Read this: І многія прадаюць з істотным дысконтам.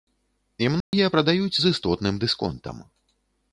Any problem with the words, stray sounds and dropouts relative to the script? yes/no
yes